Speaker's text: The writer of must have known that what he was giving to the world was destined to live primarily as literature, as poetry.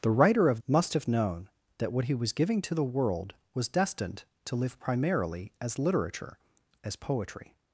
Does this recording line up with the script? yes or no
yes